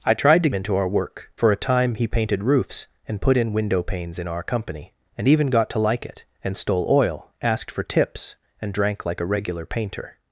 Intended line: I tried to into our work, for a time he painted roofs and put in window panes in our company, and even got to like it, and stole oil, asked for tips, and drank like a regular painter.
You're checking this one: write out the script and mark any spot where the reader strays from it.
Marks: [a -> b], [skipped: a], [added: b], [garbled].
I tried to into our work, for a time he painted roofs and put in window panes in our company, and even got to like it, and stole oil, asked for tips, and drank like a regular painter.